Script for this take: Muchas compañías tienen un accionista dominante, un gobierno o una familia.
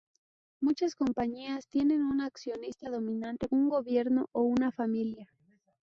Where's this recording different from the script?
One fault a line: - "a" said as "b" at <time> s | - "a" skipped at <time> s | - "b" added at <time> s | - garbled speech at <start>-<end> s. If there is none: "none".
none